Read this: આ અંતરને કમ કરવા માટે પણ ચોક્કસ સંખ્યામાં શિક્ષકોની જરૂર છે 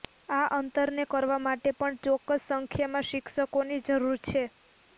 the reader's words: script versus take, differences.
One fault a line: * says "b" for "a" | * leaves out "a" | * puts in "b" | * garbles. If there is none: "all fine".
* leaves out "કમ"